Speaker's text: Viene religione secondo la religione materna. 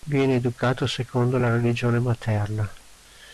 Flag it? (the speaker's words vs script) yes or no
yes